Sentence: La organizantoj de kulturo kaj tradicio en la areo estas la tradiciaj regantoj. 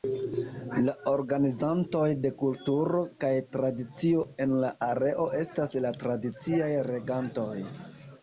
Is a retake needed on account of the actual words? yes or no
no